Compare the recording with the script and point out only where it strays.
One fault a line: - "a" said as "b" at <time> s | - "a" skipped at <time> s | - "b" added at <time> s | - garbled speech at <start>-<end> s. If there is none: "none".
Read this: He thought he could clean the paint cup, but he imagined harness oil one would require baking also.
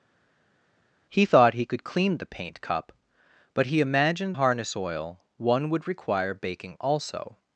none